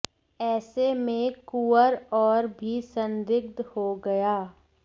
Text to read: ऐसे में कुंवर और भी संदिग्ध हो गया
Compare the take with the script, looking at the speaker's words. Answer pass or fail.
pass